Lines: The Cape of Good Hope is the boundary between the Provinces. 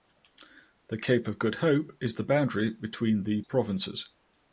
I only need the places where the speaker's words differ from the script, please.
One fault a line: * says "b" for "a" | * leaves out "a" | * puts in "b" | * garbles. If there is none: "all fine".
all fine